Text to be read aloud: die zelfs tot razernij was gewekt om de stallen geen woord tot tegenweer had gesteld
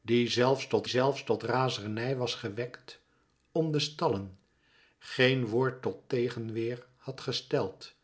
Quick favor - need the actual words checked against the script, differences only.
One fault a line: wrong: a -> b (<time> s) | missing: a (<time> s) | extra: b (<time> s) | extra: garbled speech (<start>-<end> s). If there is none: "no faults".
extra: zelfs tot (0.9 s)